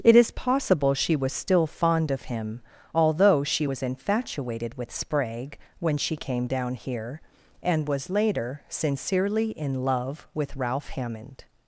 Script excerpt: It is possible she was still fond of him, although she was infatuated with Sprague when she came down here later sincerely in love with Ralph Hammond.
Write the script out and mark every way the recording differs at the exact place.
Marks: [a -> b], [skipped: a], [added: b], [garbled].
It is possible she was still fond of him, although she was infatuated with Sprague when she came down here [added: and was] later sincerely in love with Ralph Hammond.